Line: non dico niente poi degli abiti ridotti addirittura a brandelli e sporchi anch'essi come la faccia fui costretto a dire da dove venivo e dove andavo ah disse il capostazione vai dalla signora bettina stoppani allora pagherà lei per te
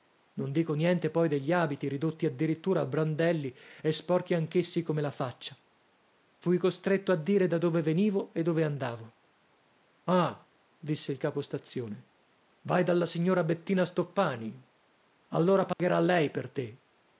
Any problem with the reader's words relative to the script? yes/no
no